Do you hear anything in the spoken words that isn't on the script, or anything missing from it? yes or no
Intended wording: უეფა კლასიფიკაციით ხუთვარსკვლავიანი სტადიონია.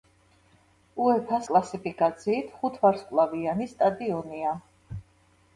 no